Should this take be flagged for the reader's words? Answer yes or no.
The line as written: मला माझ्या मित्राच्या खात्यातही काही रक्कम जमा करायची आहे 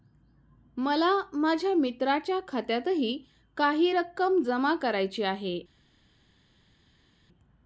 no